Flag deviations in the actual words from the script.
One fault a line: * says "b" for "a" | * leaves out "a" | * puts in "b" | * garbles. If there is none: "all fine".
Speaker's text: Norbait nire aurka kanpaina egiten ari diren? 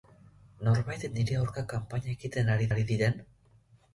* puts in "ari"